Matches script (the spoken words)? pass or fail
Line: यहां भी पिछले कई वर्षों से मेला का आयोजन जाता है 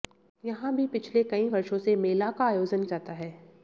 pass